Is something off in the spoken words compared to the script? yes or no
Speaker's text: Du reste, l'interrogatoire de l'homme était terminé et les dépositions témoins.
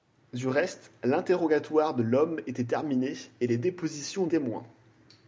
no